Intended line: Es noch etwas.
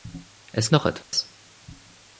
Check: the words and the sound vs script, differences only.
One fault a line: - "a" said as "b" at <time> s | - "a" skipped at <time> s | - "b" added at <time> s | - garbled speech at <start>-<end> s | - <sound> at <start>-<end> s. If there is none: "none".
- dropout at 1.0-1.1 s